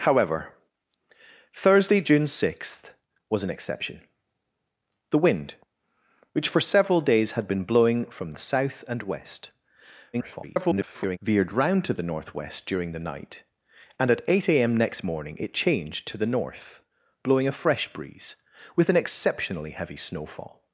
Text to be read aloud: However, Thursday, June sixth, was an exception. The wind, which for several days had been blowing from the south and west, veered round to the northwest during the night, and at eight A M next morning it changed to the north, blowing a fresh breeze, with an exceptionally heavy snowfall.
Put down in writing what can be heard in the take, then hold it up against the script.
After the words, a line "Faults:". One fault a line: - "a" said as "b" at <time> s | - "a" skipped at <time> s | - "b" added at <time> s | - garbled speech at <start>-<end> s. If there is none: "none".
However, Thursday, June sixth, was an exception. The wind, which for several days had been blowing from the south and west, [garbled] veered round to the northwest during the night, and at eight A M next morning it changed to the north, blowing a fresh breeze, with an exceptionally heavy snowfall.
Faults:
- garbled speech at 10.1-11.2 s